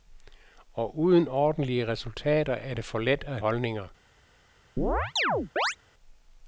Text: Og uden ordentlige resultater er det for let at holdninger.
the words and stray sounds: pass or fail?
fail